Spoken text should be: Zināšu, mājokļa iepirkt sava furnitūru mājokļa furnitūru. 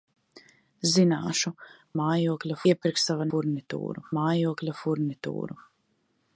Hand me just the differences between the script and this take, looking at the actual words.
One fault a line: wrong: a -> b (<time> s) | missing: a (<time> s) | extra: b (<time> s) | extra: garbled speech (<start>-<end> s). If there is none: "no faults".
no faults